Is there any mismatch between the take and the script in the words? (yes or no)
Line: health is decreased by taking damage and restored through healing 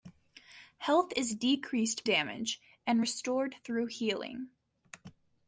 yes